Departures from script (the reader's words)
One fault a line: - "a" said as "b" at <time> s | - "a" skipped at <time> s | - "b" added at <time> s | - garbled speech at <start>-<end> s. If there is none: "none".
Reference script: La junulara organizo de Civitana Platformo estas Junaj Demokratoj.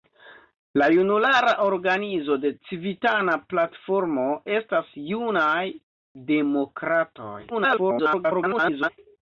- garbled speech at 7.5-8.9 s